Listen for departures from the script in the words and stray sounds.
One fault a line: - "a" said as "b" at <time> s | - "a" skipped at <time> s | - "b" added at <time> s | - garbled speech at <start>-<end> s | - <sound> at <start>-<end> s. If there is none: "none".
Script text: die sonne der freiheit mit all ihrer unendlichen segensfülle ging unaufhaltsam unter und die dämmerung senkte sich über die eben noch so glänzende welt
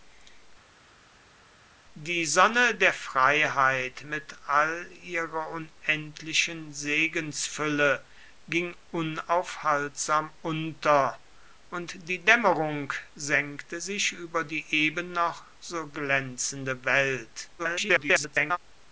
- garbled speech at 17.6-18.6 s